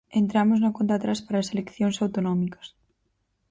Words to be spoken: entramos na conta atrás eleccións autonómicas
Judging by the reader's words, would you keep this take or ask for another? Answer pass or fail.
fail